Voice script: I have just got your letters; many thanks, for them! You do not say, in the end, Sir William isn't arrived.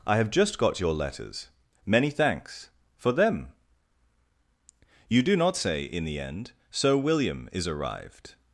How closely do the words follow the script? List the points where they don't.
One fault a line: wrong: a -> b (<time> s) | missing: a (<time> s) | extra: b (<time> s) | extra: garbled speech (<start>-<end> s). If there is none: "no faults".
wrong: isn't -> is (7.5 s)